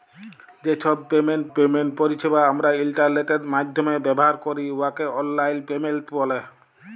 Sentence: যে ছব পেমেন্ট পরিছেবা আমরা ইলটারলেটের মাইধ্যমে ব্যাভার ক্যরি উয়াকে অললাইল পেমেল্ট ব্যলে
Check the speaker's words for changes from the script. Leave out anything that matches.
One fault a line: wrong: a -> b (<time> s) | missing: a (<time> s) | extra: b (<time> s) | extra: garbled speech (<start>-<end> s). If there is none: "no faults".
extra: পেমেন্ট (1.5 s)